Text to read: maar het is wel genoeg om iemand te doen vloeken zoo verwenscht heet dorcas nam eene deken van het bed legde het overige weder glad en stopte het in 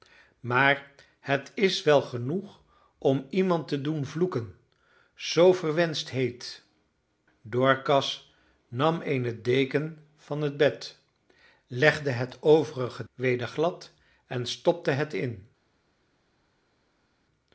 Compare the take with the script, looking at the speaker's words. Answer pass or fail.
pass